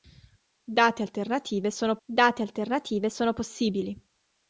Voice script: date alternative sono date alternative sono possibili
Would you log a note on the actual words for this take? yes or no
no